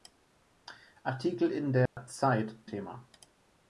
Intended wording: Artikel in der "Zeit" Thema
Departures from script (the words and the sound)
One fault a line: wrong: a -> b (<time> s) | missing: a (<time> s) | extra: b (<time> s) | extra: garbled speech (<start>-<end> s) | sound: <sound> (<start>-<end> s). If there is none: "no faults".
sound: dropout (1.9-2.0 s)